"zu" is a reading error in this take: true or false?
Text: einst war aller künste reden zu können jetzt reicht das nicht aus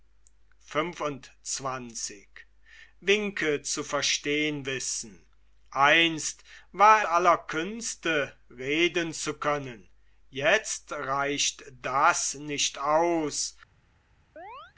false